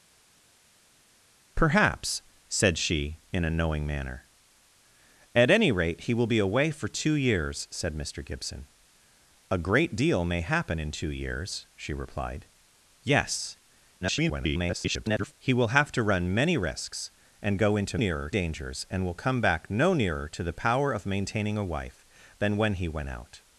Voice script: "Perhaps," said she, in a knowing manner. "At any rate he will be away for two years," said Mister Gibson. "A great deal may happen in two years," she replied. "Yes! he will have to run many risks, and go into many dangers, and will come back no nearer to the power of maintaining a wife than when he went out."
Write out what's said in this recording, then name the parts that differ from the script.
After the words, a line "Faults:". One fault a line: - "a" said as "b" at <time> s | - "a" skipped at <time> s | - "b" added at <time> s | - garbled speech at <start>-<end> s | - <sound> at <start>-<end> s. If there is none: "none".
"Perhaps," said she, in a knowing manner. "At any rate he will be away for two years," said Mister Gibson. "A great deal may happen in two years," she replied. "Yes! [garbled] he will have to run many risks, and go into nearer dangers, and will come back no nearer to the power of maintaining a wife than when he went out."
Faults:
- garbled speech at 14.0-15.3 s
- "many" said as "nearer" at 18.0 s